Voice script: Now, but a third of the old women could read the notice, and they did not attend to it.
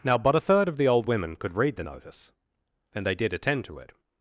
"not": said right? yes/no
no